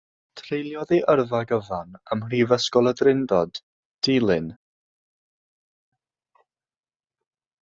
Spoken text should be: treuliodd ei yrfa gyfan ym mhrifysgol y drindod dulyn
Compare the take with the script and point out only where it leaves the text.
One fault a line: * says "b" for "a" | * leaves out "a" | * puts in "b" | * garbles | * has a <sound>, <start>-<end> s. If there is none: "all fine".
all fine